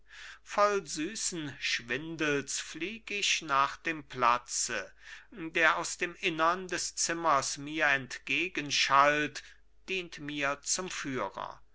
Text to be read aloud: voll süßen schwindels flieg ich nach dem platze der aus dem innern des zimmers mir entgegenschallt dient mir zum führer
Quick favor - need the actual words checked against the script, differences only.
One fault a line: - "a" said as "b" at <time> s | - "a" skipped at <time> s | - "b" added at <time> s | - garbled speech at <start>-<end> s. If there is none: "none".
none